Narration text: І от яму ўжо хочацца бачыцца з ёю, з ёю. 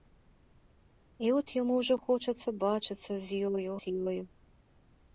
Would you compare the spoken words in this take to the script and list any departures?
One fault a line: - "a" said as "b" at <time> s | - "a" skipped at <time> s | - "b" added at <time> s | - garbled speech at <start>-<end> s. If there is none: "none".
none